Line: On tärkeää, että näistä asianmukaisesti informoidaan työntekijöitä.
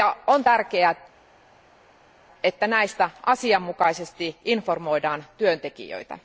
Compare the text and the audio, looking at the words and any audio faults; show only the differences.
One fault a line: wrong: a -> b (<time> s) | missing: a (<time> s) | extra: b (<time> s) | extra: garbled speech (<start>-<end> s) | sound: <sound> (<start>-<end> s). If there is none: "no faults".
no faults